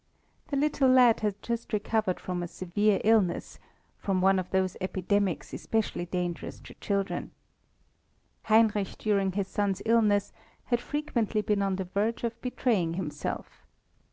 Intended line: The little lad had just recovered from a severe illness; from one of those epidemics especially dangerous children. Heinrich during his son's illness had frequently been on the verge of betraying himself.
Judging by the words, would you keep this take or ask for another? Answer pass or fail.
fail